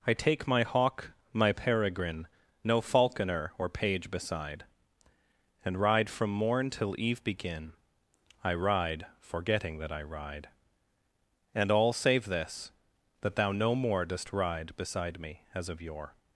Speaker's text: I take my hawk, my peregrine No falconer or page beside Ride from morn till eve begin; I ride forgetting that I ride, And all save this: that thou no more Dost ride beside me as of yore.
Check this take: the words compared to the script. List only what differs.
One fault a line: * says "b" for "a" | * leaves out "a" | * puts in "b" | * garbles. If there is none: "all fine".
* puts in "And"